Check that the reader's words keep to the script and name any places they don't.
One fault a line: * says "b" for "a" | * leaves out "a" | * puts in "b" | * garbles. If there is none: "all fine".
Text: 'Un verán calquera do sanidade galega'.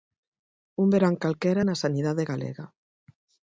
* says "na" for "do"